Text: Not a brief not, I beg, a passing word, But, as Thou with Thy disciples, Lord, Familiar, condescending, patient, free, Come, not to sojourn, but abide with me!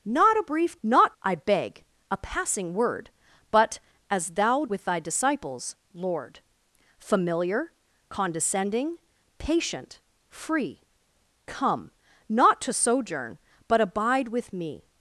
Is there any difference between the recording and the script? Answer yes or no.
no